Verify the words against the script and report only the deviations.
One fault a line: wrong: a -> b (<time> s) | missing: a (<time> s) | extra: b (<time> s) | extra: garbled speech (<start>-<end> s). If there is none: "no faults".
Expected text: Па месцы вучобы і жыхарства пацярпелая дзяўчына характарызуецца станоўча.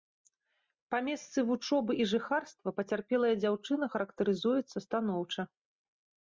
no faults